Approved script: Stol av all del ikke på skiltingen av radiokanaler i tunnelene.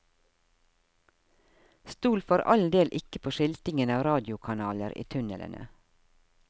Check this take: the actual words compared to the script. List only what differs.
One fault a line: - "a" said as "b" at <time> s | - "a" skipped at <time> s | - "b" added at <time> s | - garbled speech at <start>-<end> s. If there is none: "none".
- "av" said as "for" at 2.2 s